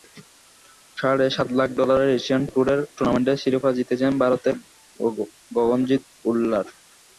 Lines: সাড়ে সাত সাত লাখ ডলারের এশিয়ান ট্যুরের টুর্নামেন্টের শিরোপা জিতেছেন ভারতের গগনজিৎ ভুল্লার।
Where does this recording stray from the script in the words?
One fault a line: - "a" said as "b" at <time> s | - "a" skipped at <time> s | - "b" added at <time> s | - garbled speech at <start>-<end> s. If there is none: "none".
- "সাত" skipped at 1.5 s